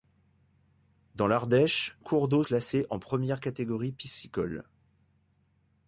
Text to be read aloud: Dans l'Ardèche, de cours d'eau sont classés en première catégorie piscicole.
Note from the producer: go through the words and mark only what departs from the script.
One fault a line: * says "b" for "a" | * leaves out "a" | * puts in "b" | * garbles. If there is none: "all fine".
* leaves out "de"
* leaves out "sont"